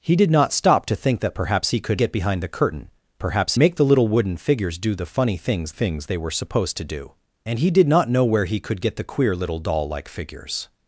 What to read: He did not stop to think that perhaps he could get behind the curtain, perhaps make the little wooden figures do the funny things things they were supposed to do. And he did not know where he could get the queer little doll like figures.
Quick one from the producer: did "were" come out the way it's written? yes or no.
yes